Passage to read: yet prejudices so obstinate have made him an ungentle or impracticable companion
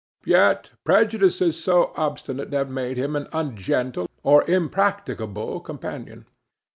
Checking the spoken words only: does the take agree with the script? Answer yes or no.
yes